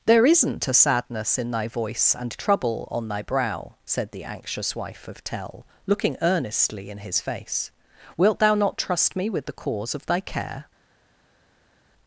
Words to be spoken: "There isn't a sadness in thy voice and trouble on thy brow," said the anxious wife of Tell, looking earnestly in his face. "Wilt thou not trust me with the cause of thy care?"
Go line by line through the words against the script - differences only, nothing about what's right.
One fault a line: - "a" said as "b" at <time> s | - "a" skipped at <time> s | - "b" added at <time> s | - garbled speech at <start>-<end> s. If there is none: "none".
none